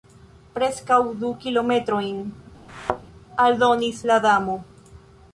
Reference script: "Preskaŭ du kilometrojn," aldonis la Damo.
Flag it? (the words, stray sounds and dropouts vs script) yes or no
yes